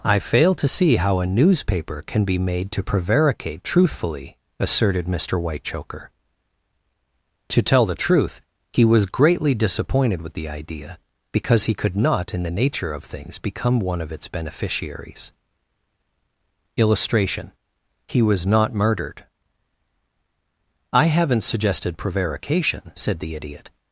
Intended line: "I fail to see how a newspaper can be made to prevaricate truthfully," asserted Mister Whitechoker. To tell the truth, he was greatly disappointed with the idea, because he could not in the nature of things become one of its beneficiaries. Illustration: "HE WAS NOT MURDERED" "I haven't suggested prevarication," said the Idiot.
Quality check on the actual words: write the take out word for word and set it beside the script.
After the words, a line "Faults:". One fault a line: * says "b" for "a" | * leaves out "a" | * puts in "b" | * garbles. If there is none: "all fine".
"I fail to see how a newspaper can be made to prevaricate truthfully," asserted Mister Whitechoker. To tell the truth, he was greatly disappointed with the idea, because he could not in the nature of things become one of its beneficiaries. Illustration: "HE WAS NOT MURDERED" "I haven't suggested prevarication," said the Idiot.
Faults:
all fine